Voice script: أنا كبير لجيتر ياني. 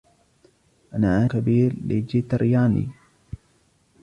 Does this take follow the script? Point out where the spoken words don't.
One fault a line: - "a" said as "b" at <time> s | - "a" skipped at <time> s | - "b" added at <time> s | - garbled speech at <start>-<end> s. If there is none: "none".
none